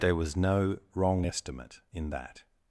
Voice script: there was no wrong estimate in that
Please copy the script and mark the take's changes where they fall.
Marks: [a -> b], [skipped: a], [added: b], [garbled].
there was no wrong estimate in that